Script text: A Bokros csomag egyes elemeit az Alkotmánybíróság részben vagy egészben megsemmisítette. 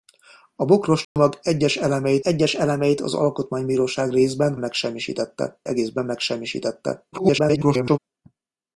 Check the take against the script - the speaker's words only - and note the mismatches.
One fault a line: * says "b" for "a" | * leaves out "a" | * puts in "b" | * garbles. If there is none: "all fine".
* puts in "egyes elemeit"
* says "megsemmisítette" for "vagy"
* garbles